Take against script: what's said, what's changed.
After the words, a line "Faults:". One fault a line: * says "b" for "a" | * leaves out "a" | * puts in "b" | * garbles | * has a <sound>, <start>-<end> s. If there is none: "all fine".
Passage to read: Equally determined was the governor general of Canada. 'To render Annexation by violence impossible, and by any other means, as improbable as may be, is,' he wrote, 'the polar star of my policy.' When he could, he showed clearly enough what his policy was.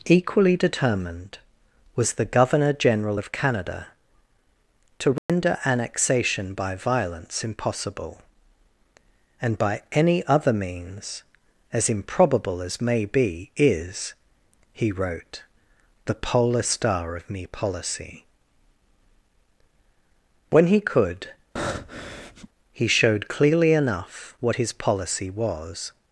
Equally determined was the governor general of Canada. 'To render Annexation by violence impossible, and by any other means, as improbable as may be, is,' he wrote, 'the polar star of me policy.' When he could, he showed clearly enough what his policy was.
Faults:
* has a dropout, 5.2-5.3 s
* says "me" for "my"
* has a breath, 21.6-22.5 s